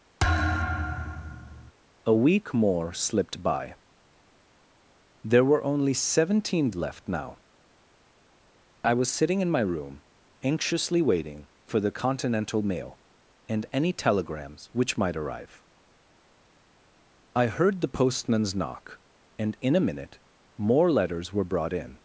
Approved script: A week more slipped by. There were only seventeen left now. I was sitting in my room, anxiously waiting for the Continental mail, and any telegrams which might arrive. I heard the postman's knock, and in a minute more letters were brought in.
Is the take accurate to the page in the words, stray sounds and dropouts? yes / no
no